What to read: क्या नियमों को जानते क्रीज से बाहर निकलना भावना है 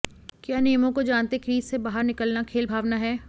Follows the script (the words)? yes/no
no